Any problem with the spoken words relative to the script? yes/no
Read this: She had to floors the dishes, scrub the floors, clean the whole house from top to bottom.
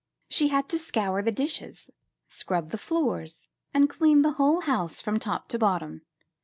yes